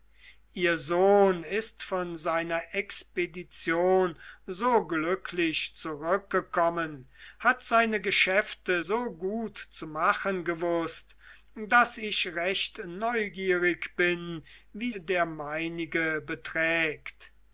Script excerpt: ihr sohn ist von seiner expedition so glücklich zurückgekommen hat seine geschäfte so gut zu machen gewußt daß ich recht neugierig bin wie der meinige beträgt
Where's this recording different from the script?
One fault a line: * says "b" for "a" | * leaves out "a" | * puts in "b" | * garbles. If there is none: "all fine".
all fine